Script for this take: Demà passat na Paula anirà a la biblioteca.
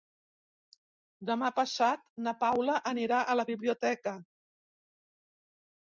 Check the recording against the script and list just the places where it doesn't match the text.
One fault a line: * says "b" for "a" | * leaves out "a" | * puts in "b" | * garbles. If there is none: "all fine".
all fine